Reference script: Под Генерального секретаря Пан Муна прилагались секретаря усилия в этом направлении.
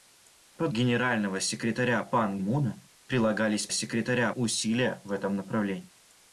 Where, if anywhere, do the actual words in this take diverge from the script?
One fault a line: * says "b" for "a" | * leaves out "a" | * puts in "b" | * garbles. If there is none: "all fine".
all fine